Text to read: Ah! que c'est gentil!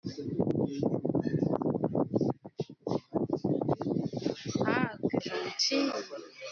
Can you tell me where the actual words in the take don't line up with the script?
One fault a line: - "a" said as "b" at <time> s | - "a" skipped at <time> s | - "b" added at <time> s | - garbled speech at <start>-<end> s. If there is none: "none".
- "c'est" skipped at 5.2 s